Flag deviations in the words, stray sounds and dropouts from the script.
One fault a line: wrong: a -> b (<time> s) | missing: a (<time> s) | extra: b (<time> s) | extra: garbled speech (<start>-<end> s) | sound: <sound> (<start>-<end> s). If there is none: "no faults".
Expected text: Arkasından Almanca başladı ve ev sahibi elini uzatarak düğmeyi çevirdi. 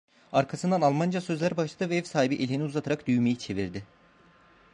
extra: sözler (1.2 s)